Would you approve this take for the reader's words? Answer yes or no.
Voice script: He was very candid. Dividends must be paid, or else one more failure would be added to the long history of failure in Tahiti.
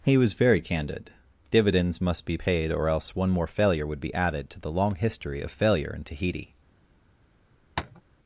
yes